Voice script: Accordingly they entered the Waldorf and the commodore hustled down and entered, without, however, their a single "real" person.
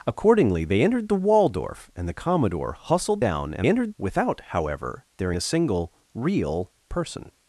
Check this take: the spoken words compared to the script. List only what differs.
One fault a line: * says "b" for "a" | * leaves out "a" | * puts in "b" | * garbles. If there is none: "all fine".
all fine